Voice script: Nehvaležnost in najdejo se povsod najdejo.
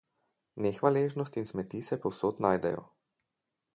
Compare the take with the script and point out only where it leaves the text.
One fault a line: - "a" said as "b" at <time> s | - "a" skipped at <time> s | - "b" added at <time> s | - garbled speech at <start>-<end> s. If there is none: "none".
- "najdejo" said as "smeti" at 1.4 s